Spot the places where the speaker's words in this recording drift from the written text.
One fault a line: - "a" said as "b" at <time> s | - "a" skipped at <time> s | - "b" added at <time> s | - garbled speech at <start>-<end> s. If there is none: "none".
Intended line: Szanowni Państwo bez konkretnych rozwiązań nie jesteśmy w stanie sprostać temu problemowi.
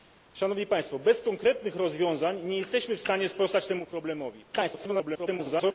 - garbled speech at 4.5-5.7 s